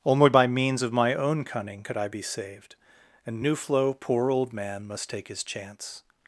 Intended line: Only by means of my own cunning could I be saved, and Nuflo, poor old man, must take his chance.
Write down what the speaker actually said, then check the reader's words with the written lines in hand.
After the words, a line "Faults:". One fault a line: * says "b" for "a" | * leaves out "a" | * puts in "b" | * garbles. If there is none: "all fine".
Only by means of my own cunning could I be saved, and Nuflo, poor old man, must take his chance.
Faults:
all fine